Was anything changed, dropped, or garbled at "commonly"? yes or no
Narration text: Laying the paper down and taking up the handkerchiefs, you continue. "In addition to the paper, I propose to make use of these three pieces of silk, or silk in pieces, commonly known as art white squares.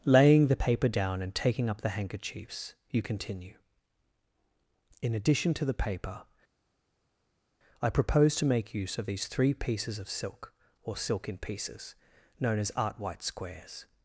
yes